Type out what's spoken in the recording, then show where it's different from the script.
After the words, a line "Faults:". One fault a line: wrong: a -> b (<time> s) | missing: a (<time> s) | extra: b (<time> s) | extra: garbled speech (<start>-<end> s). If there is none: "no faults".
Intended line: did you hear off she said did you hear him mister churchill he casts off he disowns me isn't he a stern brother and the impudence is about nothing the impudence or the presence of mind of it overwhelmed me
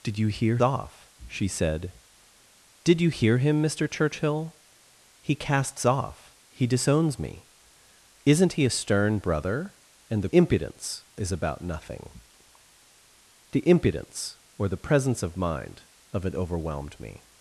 did you hear off she said did you hear him mister churchill he casts off he disowns me isn't he a stern brother and the impudence is about nothing the impudence or the presence of mind of it overwhelmed me
Faults:
no faults